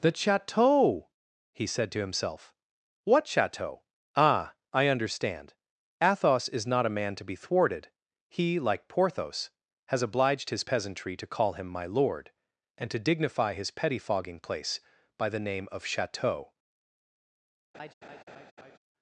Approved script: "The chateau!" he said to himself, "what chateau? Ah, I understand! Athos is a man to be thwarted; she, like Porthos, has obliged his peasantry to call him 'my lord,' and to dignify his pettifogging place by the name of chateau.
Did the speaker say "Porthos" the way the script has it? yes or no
yes